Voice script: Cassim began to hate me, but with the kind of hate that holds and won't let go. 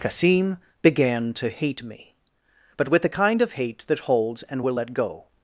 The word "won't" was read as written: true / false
false